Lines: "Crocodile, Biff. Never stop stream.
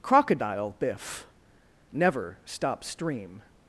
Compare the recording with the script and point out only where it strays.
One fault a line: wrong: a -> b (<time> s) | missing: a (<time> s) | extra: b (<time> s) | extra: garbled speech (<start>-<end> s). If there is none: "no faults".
no faults